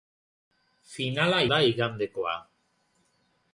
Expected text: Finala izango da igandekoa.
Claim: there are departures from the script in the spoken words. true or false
true